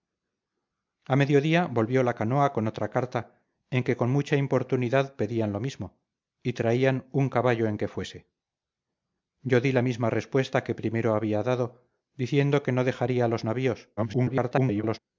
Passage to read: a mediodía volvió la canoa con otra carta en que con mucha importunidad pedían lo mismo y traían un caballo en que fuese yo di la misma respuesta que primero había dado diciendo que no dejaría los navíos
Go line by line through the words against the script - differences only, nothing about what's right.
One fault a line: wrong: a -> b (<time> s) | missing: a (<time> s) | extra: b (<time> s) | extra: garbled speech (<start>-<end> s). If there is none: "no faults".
extra: garbled speech (14.0-15.0 s)